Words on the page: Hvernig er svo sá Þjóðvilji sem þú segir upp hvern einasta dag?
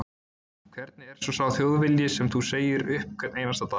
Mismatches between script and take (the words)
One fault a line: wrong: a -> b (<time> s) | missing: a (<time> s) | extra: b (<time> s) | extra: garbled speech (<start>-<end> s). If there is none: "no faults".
no faults